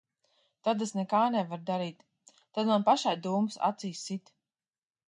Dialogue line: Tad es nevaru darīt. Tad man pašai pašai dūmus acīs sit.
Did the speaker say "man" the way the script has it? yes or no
yes